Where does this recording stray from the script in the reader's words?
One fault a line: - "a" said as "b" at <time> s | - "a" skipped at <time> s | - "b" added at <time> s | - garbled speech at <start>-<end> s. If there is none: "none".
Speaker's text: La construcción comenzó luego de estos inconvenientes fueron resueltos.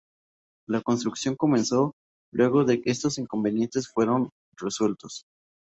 none